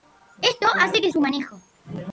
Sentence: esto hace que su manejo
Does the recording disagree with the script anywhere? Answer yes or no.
no